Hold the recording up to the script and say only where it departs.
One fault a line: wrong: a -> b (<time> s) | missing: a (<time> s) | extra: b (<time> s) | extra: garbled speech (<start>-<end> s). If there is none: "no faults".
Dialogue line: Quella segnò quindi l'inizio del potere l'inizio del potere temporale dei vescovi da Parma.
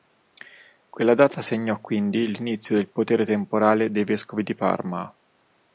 extra: data (1.1 s)
missing: l'inizio del potere (3.2 s)
wrong: da -> di (4.4 s)